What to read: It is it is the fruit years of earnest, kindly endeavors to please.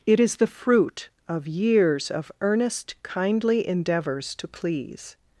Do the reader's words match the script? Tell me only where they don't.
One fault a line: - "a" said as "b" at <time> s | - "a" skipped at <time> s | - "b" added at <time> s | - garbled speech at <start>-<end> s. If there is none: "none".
- "it is" skipped at 0.4 s
- "of" added at 1.3 s